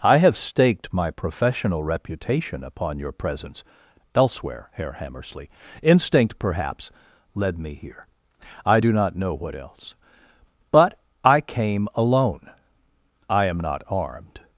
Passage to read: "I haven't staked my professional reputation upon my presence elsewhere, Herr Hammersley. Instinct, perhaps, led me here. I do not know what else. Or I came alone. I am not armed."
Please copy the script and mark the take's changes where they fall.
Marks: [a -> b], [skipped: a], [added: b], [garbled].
"I [haven't -> have] staked my professional reputation upon [my -> your] presence elsewhere, Herr Hammersley. Instinct, perhaps, led me here. I do not know what else. [Or -> But] I came alone. I am not armed."